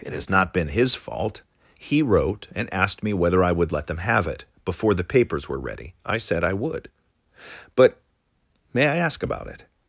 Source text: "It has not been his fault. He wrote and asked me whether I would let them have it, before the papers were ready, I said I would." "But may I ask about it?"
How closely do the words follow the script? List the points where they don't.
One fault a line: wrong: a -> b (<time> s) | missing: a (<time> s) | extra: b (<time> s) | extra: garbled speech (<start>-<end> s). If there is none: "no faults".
no faults